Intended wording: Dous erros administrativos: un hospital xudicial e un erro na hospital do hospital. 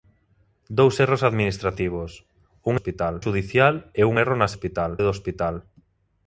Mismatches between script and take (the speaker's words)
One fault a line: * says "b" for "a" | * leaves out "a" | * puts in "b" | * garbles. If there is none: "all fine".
all fine